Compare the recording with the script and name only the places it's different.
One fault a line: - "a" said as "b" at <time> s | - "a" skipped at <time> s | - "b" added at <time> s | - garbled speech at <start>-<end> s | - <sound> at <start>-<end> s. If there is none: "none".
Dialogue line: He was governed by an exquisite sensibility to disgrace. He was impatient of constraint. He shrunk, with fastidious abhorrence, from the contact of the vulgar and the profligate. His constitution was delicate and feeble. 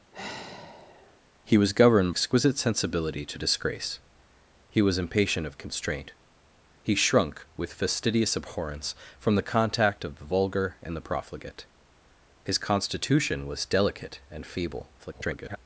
- sigh at 0.1-1.2 s
- "by an" skipped at 2.1 s
- garbled speech at 15.0-15.6 s